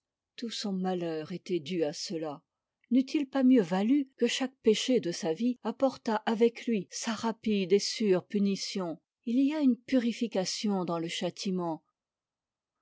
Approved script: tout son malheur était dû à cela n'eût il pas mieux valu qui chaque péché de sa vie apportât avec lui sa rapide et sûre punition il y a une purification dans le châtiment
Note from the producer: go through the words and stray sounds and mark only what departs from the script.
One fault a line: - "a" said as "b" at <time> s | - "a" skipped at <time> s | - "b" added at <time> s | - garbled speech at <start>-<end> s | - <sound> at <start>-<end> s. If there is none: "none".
- "qui" said as "que" at 4.2 s